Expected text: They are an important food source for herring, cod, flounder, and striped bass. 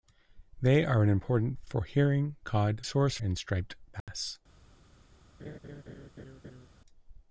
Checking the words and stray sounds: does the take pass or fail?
fail